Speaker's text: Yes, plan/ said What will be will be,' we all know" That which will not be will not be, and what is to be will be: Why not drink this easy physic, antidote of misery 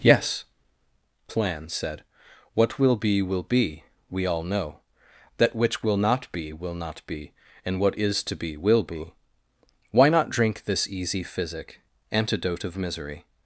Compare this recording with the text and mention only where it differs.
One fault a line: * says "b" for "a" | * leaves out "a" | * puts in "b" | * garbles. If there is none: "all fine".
all fine